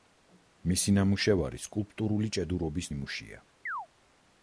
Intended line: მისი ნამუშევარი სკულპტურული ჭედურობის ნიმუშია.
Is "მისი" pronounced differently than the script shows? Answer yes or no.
no